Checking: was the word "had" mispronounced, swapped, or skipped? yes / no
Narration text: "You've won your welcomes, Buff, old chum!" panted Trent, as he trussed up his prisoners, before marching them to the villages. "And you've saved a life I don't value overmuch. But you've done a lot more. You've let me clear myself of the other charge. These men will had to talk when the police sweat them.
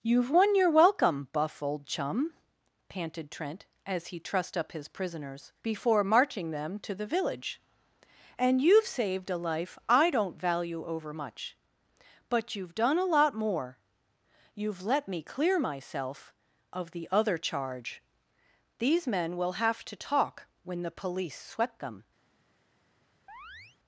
yes